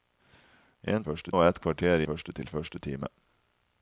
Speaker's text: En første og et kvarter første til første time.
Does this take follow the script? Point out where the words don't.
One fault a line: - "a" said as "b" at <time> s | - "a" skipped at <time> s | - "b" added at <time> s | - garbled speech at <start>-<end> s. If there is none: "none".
none